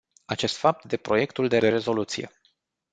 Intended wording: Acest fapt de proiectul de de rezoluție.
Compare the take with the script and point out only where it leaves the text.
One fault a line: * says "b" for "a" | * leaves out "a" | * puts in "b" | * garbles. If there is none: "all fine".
all fine